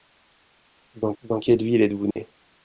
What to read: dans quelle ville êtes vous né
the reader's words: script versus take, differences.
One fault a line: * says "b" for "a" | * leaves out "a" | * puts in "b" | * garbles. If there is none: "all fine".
* puts in "dans"